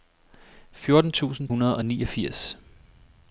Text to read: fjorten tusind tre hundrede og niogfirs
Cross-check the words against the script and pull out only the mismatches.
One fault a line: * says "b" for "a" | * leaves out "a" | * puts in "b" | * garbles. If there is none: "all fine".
* leaves out "tre"